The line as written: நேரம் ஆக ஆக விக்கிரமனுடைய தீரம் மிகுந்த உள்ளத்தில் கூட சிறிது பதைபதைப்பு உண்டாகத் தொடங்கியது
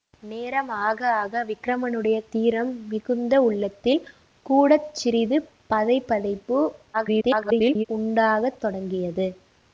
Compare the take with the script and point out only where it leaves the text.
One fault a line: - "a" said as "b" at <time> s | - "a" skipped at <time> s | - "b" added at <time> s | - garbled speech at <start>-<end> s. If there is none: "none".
- garbled speech at 6.9-7.8 s